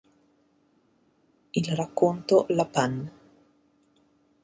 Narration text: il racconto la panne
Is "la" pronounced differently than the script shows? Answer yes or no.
no